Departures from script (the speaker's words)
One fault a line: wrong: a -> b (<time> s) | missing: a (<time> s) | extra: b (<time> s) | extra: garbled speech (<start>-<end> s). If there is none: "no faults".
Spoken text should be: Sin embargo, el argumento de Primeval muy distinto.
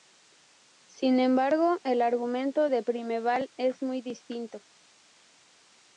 extra: es (3.6 s)